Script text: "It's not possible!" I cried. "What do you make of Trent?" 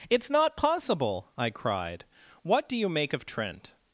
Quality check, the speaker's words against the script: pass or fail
pass